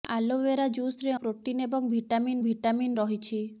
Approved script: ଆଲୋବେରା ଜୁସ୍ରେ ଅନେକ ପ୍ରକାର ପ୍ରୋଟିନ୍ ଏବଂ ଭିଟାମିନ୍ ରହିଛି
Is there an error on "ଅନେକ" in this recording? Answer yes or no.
yes